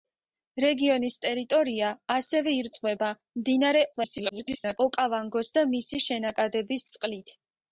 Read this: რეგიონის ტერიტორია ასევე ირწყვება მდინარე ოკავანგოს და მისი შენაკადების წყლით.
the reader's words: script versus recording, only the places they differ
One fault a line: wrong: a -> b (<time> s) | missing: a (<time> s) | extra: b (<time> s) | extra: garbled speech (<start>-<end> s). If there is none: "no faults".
extra: garbled speech (3.9-4.8 s)